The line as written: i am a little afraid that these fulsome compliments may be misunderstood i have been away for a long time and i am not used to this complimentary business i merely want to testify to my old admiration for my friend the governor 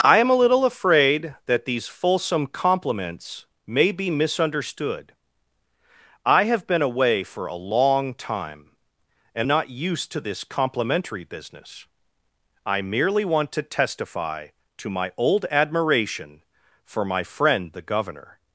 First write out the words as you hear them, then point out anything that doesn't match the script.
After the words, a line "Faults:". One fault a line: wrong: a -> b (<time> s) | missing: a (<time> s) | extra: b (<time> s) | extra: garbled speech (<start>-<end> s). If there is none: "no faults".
i am a little afraid that these fulsome compliments may be misunderstood i have been away for a long time and not used to this complimentary business i merely want to testify to my old admiration for my friend the governor
Faults:
missing: i am (9.5 s)